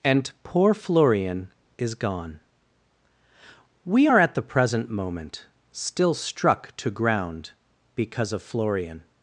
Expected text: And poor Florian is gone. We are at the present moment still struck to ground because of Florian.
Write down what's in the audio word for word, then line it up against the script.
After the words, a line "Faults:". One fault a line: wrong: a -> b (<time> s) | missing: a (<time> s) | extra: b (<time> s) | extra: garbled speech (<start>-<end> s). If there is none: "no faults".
And poor Florian is gone. We are at the present moment still struck to ground because of Florian.
Faults:
no faults